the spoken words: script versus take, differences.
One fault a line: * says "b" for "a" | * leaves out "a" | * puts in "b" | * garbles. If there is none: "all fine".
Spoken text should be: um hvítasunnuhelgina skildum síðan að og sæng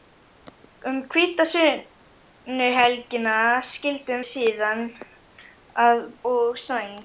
all fine